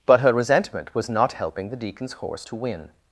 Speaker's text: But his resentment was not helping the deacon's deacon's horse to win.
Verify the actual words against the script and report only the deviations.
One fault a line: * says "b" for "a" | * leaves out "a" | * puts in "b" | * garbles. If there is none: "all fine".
* says "her" for "his"
* leaves out "deacon's"